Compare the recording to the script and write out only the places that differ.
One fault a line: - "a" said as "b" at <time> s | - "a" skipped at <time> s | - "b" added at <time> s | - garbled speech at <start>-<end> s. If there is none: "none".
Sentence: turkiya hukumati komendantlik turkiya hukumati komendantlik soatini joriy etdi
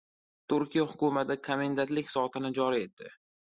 - "turkiya hukumati komendantlik" skipped at 2.1 s